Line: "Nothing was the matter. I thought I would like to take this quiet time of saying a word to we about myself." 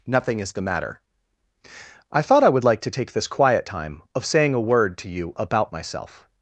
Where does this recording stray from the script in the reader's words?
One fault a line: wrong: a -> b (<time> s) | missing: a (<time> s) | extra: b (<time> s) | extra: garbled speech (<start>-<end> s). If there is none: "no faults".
wrong: was -> is (0.4 s)
wrong: we -> you (5.1 s)